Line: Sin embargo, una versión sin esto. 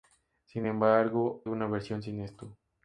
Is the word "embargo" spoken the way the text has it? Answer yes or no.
yes